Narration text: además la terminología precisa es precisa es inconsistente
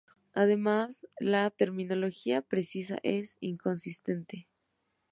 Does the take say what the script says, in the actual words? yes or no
no